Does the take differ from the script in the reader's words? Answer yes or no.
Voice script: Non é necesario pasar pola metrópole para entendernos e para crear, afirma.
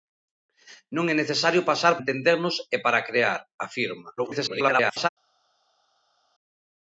yes